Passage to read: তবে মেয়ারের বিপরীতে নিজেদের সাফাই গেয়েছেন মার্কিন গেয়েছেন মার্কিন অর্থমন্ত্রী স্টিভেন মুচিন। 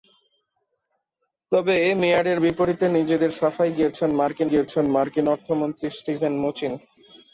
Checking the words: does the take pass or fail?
pass